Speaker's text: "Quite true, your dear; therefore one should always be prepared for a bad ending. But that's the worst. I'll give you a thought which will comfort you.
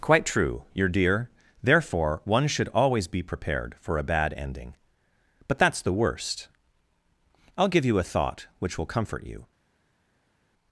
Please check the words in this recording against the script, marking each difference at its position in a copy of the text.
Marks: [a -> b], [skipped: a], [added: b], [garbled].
"Quite true, your dear; therefore one should always be prepared for a bad ending. But that's the worst. I'll give you a thought which will comfort you.